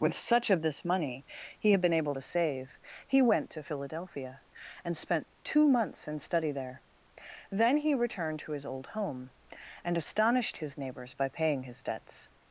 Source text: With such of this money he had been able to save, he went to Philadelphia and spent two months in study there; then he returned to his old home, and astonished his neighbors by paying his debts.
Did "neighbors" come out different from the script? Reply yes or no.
no